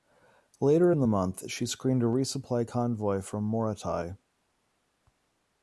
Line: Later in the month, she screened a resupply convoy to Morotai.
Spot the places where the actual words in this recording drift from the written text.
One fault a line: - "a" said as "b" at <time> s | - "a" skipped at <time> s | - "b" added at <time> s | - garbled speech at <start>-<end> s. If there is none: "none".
- "to" said as "from" at 3.2 s